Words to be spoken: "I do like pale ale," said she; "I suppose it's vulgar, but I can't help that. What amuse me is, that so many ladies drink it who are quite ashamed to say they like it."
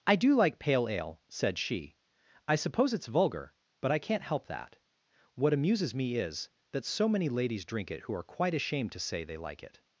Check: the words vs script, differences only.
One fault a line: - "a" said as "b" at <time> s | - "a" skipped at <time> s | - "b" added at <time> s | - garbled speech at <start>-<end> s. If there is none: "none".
- "amuse" said as "amuses" at 5.5 s